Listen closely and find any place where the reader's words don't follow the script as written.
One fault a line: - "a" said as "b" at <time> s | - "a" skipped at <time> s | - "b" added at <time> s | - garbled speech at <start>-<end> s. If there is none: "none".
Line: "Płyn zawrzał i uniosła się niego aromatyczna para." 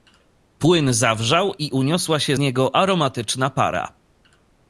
none